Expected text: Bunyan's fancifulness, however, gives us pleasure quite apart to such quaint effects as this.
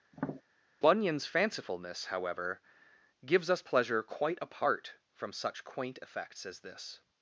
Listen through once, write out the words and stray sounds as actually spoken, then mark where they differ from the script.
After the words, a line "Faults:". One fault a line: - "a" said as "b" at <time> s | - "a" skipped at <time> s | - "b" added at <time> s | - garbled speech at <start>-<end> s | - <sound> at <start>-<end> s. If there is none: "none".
Bunyan's fancifulness, however, gives us pleasure quite apart from such quaint effects as this.
Faults:
- tap at 0.1-0.4 s
- "to" said as "from" at 5.1 s